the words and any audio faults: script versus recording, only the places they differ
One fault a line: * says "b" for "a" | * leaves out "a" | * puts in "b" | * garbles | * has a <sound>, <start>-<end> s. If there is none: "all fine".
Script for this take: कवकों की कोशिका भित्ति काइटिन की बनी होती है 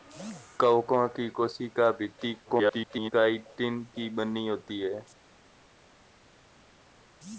* garbles